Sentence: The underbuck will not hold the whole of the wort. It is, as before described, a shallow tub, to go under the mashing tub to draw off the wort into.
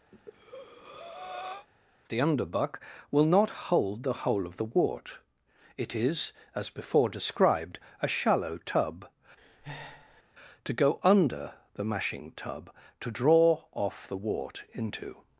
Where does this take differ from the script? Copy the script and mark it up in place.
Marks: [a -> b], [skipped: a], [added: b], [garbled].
The underbuck will not hold the whole of the wort. It is, as before described, a shallow tub, to go under the mashing tub to draw off the wort into.